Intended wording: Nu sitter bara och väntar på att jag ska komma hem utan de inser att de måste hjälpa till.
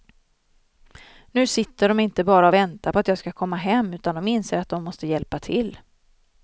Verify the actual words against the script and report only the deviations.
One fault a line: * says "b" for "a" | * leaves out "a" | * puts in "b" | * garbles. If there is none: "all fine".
* puts in "de inte"